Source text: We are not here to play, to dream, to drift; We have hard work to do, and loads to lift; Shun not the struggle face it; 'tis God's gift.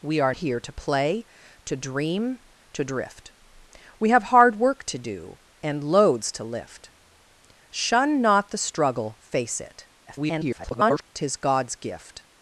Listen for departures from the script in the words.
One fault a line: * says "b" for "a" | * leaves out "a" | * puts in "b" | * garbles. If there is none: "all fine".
* leaves out "not"
* garbles